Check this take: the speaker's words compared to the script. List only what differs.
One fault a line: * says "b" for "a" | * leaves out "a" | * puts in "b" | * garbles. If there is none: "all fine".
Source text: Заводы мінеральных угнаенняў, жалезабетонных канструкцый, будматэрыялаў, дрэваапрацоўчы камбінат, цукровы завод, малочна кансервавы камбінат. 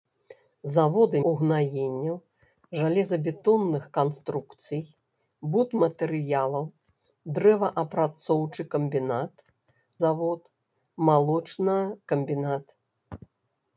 * leaves out "мінеральных"
* leaves out "цукровы"
* leaves out "кансервавы"